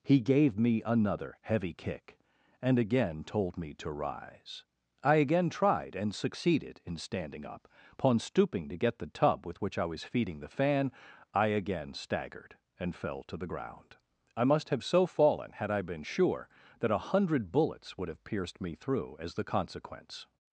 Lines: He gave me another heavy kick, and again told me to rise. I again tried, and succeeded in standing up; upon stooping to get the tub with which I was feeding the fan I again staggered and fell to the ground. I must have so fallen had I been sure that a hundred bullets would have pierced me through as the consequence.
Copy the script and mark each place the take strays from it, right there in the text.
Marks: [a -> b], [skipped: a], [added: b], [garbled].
He gave me another heavy kick, and again told me to rise. I again tried, and succeeded in standing up; upon stooping to get the tub with which I was feeding the fan I again staggered and fell to the ground. I must have so fallen had I been sure that a hundred bullets would have pierced me through as the consequence.